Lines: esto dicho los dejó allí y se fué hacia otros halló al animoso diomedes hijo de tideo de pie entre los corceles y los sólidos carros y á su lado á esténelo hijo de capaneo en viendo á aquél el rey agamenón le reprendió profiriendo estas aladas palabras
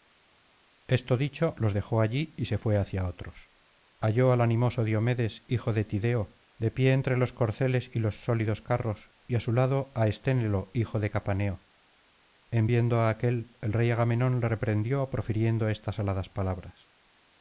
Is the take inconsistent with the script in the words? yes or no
no